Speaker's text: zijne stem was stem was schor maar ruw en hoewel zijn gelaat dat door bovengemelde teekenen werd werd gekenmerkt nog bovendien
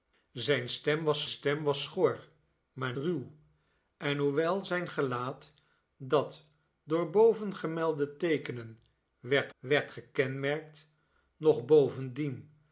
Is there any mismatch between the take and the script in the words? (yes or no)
no